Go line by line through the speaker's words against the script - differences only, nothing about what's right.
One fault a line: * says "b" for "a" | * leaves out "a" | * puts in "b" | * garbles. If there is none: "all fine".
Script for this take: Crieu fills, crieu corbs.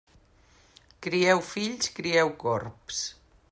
all fine